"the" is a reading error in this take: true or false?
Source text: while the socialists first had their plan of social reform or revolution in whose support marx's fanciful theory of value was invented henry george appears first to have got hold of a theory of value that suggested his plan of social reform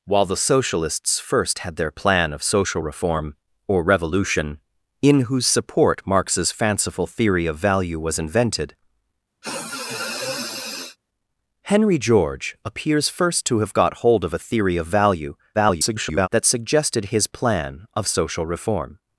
false